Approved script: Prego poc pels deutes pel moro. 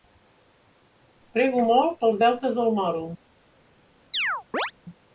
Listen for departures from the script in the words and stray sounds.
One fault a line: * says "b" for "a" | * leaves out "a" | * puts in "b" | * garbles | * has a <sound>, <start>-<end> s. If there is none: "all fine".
* says "molt" for "poc"
* says "del" for "pel"
* has a chirp, 4.1-4.7 s